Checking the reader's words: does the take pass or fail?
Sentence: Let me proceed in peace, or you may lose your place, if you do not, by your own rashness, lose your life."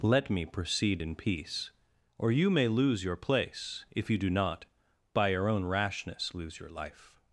pass